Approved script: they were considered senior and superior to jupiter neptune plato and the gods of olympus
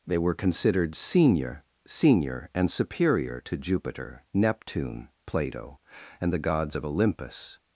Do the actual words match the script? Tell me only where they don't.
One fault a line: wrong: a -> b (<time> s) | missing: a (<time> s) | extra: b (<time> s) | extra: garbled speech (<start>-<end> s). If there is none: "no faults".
extra: senior (1.9 s)